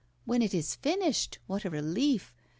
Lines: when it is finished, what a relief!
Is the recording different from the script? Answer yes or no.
no